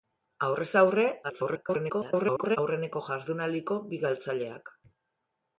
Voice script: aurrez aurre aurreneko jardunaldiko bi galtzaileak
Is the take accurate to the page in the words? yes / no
no